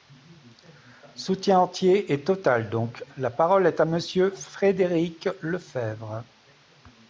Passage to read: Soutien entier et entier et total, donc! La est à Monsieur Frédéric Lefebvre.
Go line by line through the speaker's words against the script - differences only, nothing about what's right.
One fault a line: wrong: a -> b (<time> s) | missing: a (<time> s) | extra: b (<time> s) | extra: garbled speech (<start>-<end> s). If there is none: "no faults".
missing: entier et (2.2 s)
extra: parole (3.3 s)